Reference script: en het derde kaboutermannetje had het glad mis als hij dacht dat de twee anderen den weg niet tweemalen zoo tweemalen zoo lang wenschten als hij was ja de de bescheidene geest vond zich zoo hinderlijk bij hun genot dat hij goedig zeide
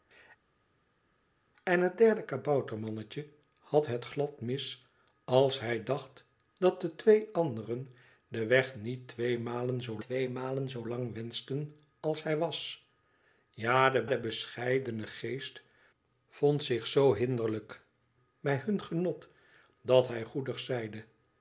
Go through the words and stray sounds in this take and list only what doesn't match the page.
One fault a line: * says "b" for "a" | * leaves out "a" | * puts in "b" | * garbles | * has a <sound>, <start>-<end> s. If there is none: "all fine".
all fine